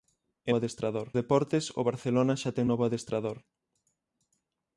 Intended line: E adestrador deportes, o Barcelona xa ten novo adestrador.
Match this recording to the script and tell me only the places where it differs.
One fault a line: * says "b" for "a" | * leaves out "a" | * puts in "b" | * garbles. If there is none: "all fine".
all fine